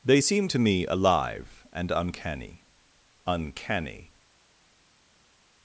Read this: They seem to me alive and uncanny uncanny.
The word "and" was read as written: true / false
true